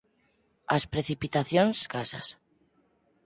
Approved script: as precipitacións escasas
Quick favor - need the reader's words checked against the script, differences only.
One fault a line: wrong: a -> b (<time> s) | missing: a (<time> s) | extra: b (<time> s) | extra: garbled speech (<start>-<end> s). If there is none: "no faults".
no faults